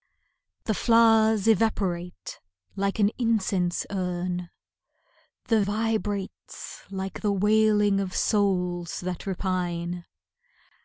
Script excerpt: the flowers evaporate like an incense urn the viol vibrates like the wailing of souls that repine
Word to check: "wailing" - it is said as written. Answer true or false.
true